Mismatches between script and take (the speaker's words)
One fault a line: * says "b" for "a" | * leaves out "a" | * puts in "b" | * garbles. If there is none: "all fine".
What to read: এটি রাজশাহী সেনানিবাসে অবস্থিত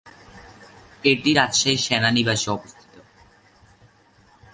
all fine